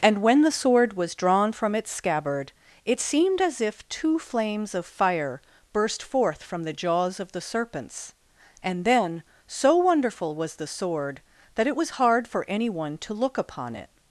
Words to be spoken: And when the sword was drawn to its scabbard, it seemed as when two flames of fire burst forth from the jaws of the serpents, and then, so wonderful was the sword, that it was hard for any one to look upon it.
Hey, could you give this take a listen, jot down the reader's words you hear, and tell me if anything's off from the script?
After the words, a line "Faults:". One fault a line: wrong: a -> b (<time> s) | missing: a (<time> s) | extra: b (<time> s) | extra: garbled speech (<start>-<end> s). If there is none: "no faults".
And when the sword was drawn from its scabbard, it seemed as if two flames of fire burst forth from the jaws of the serpents, and then, so wonderful was the sword, that it was hard for any one to look upon it.
Faults:
wrong: to -> from (1.5 s)
wrong: when -> if (3.6 s)